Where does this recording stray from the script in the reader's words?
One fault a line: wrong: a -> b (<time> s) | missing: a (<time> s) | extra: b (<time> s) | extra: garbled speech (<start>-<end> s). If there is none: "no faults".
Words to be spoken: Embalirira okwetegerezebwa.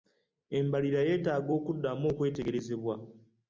extra: yeetaaga okuddamu (1.1 s)